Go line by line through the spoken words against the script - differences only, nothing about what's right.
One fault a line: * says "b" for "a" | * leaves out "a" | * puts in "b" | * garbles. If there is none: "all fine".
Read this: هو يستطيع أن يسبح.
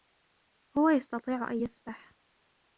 all fine